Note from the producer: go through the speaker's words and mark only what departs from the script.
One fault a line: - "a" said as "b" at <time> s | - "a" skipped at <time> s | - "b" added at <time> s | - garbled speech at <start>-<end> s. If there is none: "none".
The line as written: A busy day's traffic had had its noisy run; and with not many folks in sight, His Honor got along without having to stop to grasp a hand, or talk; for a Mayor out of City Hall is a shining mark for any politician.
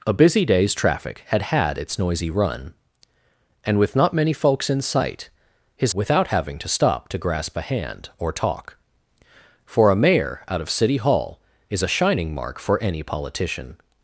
- "Honor got along" skipped at 5.9 s